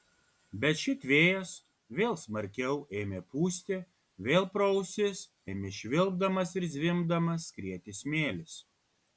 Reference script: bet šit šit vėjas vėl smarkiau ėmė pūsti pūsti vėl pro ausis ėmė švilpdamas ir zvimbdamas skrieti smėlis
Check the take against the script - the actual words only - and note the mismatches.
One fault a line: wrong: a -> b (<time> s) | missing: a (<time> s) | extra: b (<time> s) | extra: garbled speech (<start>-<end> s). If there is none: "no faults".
missing: šit (1.0 s)
missing: pūsti (3.8 s)